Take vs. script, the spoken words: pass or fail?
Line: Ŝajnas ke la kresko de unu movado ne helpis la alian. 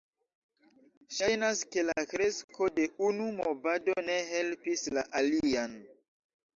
pass